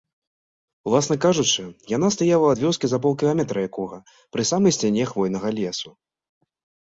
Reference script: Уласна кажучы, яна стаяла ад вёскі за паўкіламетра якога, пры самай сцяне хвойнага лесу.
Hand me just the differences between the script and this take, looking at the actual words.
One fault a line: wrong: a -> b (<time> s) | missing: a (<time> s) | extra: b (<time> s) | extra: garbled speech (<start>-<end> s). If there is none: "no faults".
no faults